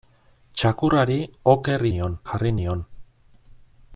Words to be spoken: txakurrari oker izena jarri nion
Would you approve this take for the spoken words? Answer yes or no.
no